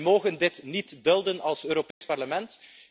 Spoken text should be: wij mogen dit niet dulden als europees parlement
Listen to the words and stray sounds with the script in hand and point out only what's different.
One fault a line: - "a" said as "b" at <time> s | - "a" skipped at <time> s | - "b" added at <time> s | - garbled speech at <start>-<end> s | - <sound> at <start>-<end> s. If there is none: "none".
- dropout at 1.9-2.0 s